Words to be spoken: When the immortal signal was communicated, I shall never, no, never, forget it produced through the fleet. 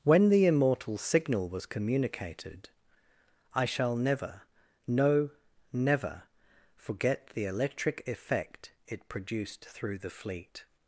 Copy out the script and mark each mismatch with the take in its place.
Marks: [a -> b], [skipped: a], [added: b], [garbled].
When the immortal signal was communicated, I shall never, no, never, forget [added: the electric effect] it produced through the fleet.